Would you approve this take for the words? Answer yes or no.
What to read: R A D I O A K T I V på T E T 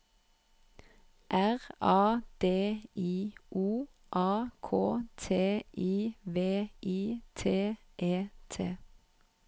no